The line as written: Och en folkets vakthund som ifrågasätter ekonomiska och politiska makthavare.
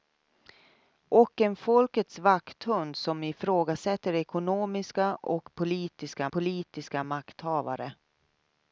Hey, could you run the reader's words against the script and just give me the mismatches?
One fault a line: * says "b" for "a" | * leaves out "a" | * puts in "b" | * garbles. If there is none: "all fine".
* puts in "politiska"